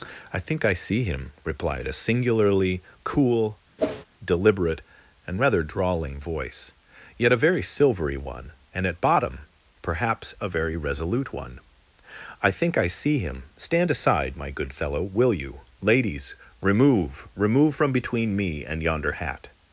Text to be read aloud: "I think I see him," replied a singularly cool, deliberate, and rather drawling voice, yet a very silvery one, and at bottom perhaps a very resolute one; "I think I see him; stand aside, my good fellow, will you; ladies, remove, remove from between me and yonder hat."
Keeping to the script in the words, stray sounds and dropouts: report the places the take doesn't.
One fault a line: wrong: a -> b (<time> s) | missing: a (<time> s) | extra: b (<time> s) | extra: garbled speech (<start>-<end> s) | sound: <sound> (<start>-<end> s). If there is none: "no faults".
sound: whoosh (3.8-4.1 s)